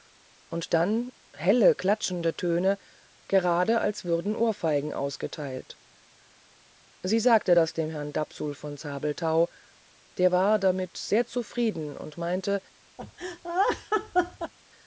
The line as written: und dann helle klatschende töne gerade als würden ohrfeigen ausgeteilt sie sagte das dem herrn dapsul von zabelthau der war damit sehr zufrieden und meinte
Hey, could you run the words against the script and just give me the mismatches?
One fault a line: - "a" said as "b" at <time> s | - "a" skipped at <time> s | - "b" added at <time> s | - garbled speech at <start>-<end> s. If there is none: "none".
none